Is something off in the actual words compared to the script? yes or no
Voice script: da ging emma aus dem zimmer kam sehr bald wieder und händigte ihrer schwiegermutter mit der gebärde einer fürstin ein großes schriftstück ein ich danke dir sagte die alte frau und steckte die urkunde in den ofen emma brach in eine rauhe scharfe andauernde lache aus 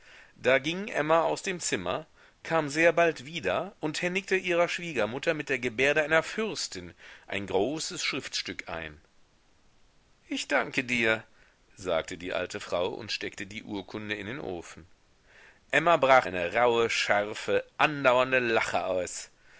yes